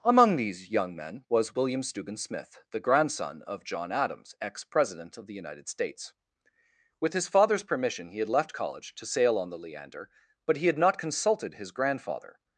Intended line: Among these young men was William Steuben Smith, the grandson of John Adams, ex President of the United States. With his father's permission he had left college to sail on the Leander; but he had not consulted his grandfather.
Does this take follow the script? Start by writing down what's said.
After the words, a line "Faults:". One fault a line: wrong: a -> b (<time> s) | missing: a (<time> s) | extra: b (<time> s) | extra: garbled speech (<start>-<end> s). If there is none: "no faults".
Among these young men was William Steuben Smith, the grandson of John Adams, ex President of the United States. With his father's permission he had left college to sail on the Leander; but he had not consulted his grandfather.
Faults:
no faults